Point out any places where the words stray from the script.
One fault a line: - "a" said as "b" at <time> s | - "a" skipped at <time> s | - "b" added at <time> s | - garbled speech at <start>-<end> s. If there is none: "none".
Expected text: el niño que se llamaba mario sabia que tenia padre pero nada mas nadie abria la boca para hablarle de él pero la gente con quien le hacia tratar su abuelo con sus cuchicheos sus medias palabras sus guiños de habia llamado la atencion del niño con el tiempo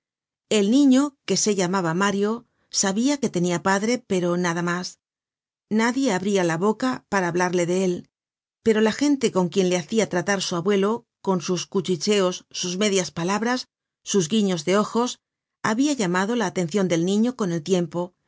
- "ojos" added at 14.8 s